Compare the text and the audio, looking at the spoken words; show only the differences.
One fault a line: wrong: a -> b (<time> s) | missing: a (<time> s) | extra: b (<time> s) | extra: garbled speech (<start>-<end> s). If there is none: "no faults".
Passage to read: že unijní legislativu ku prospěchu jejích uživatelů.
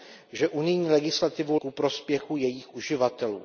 no faults